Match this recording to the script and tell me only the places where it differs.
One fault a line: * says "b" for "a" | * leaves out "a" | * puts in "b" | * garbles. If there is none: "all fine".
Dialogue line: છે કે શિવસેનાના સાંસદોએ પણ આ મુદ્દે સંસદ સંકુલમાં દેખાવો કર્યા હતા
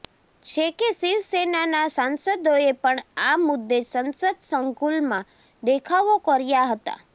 all fine